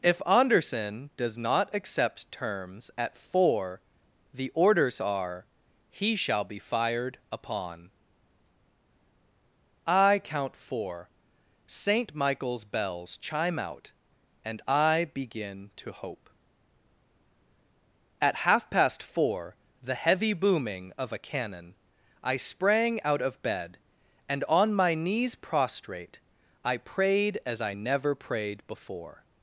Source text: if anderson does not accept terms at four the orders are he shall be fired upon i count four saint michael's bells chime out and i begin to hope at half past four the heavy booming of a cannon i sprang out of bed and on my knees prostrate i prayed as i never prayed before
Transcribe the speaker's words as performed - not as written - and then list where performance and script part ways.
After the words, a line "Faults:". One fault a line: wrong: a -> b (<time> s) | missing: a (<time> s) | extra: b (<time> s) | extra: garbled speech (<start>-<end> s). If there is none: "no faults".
if anderson does not accept terms at four the orders are he shall be fired upon i count four saint michael's bells chime out and i begin to hope at half past four the heavy booming of a cannon i sprang out of bed and on my knees prostrate i prayed as i never prayed before
Faults:
no faults